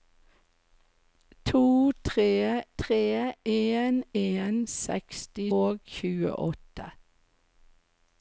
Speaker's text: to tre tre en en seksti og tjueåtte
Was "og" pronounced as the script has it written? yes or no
yes